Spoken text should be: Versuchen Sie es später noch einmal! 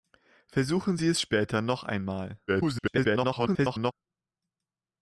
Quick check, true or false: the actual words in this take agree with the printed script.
false